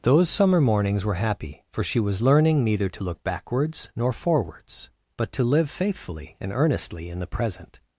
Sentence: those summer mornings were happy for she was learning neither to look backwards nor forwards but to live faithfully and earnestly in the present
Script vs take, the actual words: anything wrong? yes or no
no